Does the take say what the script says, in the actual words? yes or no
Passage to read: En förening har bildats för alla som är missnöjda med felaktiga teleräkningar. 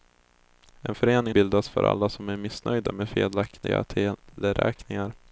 no